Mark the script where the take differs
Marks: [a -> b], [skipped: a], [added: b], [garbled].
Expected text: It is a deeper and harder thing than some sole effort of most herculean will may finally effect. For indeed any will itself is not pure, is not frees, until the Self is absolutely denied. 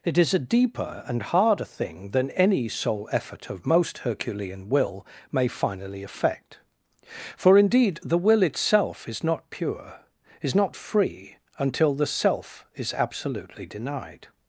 It is a deeper and harder thing than [some -> any] sole effort of most herculean will may finally effect. For indeed [any -> the] will itself is not pure, is not [frees, -> free] until the Self is absolutely denied.